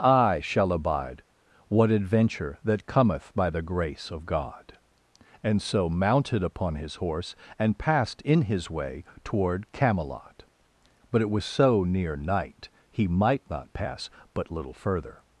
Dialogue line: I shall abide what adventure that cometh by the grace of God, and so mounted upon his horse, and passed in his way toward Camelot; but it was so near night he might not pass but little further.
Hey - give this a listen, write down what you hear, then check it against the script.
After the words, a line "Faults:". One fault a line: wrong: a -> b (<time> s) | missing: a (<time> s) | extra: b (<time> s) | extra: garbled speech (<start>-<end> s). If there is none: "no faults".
I shall abide what adventure that cometh by the grace of God, and so mounted upon his horse, and passed in his way toward Camelot; but it was so near night he might not pass but little further.
Faults:
no faults